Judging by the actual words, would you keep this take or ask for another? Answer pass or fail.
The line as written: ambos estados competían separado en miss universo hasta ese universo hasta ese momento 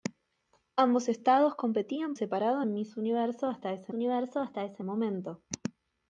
pass